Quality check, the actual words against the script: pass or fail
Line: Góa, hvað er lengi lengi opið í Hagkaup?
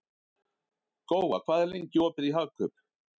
fail